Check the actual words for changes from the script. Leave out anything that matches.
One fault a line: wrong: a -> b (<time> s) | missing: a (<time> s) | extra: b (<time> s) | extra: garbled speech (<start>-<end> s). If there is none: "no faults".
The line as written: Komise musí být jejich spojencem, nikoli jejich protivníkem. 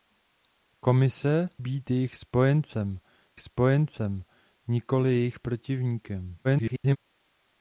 missing: musí (1.5 s)
extra: spojencem (3.4 s)
extra: garbled speech (6.4-7.0 s)